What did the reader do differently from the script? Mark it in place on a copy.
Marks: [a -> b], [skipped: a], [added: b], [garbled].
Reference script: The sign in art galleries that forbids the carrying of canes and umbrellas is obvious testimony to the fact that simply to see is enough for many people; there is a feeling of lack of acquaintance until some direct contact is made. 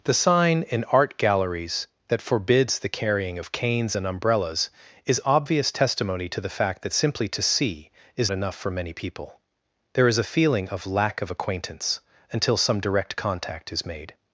The sign in art galleries that forbids the carrying of canes and umbrellas is obvious testimony to the fact that simply to see is enough for many people; there is a feeling of lack of acquaintance until some direct contact is made.